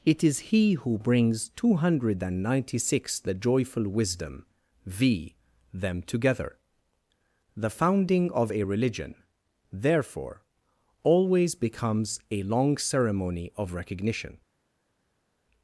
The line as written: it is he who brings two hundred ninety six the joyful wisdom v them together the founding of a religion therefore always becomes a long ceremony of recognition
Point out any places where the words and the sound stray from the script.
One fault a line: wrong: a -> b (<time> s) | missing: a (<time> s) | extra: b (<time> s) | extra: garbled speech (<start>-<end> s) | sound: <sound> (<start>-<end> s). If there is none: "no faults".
no faults